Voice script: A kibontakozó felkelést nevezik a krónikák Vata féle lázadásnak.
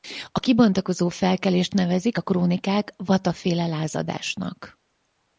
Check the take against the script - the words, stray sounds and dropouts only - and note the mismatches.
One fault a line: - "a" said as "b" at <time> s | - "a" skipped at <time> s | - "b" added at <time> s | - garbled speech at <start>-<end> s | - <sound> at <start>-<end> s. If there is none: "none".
none